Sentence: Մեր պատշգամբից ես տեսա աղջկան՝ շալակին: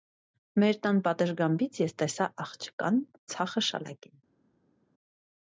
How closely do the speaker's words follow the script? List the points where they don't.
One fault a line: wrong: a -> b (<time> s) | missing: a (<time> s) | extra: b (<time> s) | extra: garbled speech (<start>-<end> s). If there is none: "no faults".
extra: տան (0.8 s)
extra: ցախը (3.3 s)